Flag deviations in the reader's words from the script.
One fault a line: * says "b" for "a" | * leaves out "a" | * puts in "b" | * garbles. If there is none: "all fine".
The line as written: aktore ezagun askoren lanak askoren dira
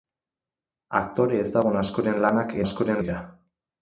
all fine